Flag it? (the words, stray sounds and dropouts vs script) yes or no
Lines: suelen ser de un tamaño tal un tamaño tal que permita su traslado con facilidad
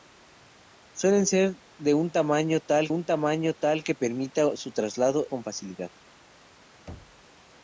yes